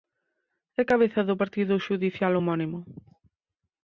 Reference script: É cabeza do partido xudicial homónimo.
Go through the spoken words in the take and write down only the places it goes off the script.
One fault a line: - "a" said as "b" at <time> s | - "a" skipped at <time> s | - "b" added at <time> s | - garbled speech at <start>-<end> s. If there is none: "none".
none